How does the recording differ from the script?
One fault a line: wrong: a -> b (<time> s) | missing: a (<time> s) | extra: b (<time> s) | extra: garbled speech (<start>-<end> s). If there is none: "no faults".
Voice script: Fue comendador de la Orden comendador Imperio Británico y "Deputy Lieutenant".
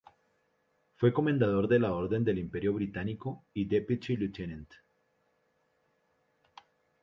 wrong: comendador -> del (2.2 s)